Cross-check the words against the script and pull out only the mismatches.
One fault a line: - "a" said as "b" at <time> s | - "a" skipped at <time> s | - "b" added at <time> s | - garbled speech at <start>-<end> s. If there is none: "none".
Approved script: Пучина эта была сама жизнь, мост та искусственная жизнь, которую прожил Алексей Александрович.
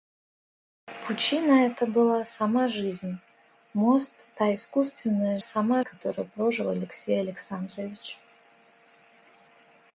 - "жизнь" said as "сама" at 5.4 s